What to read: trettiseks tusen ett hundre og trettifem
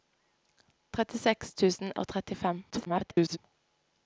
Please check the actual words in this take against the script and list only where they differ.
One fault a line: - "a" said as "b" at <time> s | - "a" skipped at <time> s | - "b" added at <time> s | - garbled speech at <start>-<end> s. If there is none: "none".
- "ett hundre" skipped at 1.9 s
- garbled speech at 2.7-3.4 s